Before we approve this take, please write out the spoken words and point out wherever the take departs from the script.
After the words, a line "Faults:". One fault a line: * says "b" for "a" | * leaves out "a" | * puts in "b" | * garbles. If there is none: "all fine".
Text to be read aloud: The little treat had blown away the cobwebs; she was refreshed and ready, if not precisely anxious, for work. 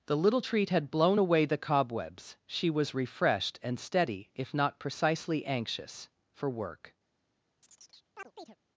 The little treat had blown away the cobwebs; she was refreshed and steady, if not precisely anxious, for work.
Faults:
* says "steady" for "ready"